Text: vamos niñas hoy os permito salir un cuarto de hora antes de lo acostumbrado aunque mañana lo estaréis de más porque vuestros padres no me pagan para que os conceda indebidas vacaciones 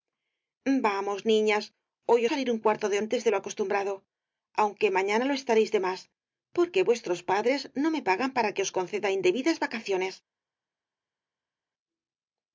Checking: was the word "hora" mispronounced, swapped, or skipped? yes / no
yes